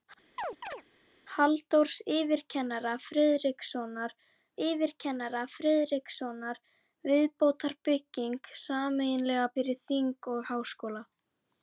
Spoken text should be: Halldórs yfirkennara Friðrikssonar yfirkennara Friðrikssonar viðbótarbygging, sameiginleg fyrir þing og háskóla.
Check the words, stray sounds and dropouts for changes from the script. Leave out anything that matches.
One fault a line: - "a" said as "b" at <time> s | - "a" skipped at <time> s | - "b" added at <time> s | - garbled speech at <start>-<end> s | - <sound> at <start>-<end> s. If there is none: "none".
- chirp at 0.4-0.8 s